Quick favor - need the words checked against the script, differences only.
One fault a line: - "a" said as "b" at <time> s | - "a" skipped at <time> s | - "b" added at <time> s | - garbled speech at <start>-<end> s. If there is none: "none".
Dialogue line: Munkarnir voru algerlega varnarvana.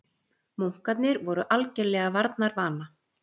none